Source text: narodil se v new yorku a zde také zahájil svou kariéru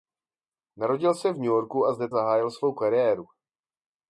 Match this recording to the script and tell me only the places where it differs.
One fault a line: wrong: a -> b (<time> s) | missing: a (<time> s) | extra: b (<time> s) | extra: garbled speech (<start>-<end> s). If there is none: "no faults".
missing: také (2.1 s)